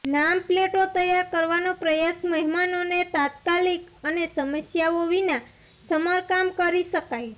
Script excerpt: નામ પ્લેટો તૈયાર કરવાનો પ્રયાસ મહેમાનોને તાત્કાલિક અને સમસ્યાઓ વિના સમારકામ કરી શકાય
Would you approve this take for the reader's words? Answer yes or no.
yes